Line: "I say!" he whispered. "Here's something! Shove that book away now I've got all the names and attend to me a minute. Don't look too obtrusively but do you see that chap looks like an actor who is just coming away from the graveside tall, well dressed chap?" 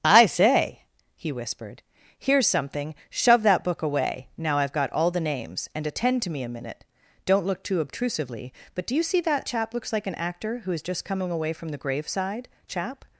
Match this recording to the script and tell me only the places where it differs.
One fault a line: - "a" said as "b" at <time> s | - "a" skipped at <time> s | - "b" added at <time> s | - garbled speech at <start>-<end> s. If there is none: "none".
- "tall well dressed" skipped at 12.5 s